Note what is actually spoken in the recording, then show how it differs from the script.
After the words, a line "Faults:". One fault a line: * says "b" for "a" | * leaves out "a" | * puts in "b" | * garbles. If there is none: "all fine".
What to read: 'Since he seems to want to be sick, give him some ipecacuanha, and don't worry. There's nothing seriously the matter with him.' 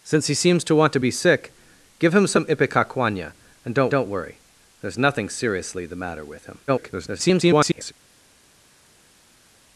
'Since he seems to want to be sick, give him some ipecacuanha, and don't don't worry. There's nothing seriously the matter with him.' [garbled]
Faults:
* puts in "don't"
* garbles